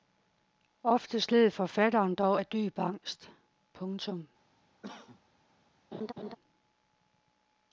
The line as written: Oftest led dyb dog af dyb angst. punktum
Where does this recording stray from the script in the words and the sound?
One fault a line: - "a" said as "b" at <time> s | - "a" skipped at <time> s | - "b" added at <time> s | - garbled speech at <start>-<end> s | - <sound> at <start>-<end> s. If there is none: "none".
- "dyb" said as "forfatteren" at 1.5 s
- cough at 4.8-5.2 s
- laugh at 5.9-6.4 s